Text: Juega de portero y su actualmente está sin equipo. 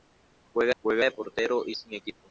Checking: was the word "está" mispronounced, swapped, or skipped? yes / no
yes